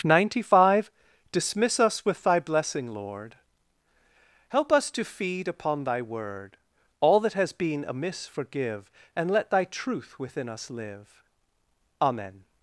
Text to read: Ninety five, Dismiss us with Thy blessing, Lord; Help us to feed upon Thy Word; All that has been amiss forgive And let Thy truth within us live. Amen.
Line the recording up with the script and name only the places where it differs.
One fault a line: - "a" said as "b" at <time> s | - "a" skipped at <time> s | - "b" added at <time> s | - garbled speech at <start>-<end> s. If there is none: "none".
none